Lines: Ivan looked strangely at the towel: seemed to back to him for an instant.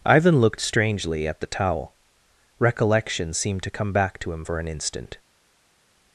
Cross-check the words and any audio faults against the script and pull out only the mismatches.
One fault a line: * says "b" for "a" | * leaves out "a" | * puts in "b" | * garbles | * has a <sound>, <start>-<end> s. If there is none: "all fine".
* puts in "recollection"
* puts in "come"